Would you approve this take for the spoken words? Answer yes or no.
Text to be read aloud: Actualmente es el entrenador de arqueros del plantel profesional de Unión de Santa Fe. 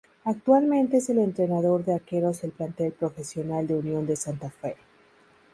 yes